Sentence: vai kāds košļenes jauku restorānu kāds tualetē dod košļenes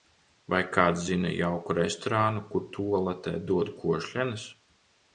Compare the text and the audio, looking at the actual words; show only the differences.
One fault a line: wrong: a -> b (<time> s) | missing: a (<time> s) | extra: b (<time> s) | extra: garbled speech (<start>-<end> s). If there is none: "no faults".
wrong: košļenes -> zina (1.1 s)
wrong: kāds -> kur (2.6 s)